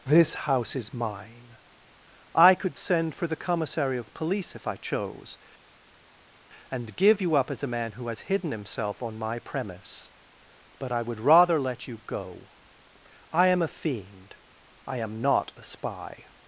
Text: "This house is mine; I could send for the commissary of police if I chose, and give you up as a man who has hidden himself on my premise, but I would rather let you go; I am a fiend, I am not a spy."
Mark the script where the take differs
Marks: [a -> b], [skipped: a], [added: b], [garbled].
"This house is mine; I could send for the commissary of police if I chose, and give you up as a man who has hidden himself on my premise, but I would rather let you go; I am a fiend, I am not a spy."